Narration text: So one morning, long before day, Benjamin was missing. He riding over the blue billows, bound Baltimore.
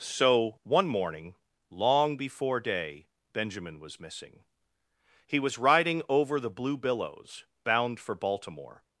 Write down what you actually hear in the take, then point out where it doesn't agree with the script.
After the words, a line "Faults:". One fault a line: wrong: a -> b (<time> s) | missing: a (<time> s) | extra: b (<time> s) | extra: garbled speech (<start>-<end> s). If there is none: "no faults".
So one morning, long before day, Benjamin was missing. He was riding over the blue billows, bound for Baltimore.
Faults:
extra: was (5.4 s)
extra: for (8.0 s)